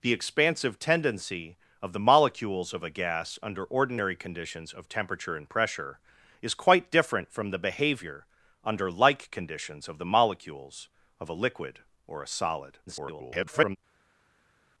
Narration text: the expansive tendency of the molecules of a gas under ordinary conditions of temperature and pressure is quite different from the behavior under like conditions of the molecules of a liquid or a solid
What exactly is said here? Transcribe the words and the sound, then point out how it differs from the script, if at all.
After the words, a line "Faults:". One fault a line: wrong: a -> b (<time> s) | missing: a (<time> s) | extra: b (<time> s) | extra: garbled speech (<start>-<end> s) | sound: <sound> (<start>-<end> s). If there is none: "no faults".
the expansive tendency of the molecules of a gas under ordinary conditions of temperature and pressure is quite different from the behavior under like conditions of the molecules of a liquid or a solid [garbled]
Faults:
extra: garbled speech (12.9-13.8 s)